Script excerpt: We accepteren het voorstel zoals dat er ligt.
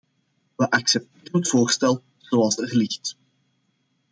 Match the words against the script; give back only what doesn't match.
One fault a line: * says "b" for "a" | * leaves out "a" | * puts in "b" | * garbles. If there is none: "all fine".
* leaves out "dat"